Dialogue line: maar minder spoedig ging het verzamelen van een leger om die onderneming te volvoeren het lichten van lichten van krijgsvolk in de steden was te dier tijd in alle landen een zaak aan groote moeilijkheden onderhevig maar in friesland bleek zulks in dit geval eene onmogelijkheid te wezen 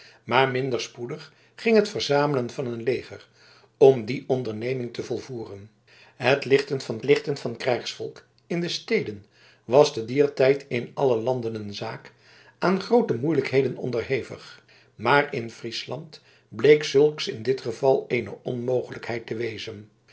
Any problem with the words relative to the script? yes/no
no